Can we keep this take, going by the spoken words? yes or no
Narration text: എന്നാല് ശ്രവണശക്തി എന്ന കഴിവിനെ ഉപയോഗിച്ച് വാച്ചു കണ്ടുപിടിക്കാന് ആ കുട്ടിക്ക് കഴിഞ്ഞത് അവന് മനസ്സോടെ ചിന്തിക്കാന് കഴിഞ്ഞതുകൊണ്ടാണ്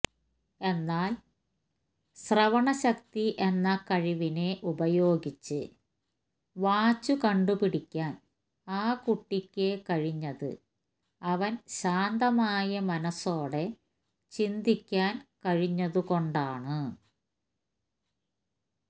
no